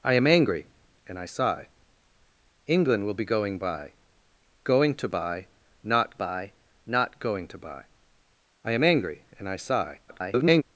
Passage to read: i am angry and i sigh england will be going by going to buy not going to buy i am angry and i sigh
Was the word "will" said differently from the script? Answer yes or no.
no